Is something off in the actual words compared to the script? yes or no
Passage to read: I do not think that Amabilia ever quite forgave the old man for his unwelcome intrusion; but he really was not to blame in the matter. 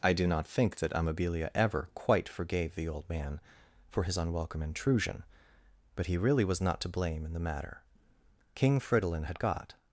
yes